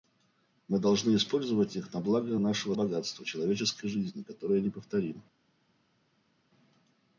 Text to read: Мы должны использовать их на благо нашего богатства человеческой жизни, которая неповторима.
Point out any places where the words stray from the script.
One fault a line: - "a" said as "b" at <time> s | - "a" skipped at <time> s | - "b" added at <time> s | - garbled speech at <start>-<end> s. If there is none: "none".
none